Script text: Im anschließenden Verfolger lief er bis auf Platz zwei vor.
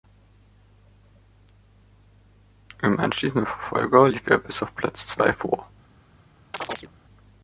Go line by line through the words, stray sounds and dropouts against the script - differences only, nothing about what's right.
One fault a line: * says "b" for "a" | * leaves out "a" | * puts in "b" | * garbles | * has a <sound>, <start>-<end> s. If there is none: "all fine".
* has a chirp, 6.5-6.9 s